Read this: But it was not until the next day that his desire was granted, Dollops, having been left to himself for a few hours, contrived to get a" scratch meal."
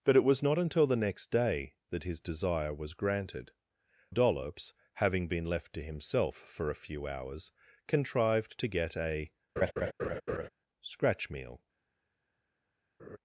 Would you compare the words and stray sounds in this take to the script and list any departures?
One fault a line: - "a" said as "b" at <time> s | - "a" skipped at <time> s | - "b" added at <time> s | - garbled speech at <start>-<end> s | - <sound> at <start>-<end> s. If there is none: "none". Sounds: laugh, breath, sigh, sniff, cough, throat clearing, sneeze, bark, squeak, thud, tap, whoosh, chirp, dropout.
- laugh at 9.6-10.5 s
- laugh at 13.0-13.2 s